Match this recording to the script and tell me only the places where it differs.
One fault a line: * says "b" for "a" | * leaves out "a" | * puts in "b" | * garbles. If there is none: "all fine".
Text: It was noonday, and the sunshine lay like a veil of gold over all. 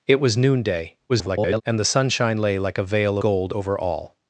* garbles
* leaves out "of"